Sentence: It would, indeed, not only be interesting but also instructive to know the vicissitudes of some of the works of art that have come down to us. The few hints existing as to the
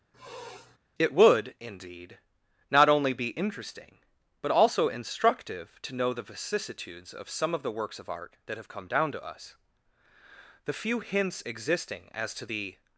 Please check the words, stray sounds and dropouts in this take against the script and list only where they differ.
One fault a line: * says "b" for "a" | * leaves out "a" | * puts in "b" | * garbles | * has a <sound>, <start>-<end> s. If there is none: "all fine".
* has a sniff, 0.1-0.8 s